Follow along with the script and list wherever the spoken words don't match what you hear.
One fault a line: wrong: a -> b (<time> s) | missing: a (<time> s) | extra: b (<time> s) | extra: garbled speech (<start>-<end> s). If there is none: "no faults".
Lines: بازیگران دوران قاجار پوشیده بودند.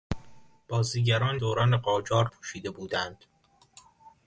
no faults